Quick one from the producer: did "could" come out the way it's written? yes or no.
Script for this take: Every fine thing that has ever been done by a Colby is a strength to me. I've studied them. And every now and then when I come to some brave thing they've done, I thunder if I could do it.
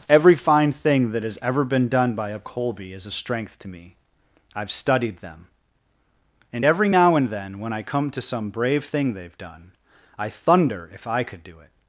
yes